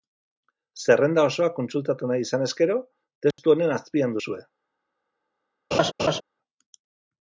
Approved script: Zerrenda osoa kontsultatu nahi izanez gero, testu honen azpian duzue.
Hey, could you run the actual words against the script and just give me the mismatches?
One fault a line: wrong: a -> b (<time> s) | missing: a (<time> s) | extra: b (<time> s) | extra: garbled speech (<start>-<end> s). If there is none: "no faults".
no faults